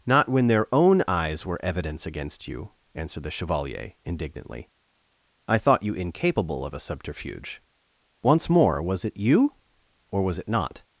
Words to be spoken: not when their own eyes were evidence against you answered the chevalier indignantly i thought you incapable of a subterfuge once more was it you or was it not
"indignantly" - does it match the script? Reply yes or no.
yes